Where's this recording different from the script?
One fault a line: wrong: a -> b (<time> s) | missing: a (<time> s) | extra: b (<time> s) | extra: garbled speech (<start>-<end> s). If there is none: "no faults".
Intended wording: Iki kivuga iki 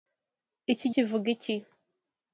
no faults